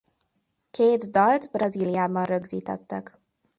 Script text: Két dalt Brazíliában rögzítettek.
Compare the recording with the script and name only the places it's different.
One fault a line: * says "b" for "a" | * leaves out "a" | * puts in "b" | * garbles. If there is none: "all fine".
all fine